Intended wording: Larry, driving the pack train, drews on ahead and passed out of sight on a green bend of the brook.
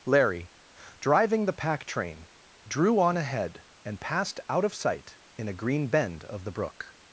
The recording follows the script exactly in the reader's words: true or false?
false